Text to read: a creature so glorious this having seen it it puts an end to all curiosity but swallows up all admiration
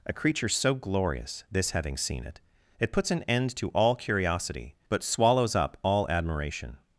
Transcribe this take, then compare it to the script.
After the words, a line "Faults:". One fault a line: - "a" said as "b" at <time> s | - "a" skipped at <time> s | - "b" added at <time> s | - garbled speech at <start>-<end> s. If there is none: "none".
a creature so glorious this having seen it it puts an end to all curiosity but swallows up all admiration
Faults:
none